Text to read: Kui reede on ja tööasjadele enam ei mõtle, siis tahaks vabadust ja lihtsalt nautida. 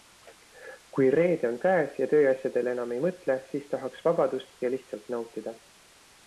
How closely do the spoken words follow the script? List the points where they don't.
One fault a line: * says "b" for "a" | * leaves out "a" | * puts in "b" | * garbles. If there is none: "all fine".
* puts in "käes"